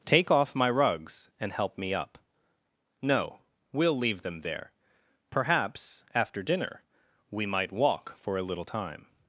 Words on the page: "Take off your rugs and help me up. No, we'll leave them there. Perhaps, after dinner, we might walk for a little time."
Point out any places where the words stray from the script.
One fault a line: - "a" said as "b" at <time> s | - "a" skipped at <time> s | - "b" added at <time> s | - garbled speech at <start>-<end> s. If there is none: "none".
- "your" said as "my" at 0.6 s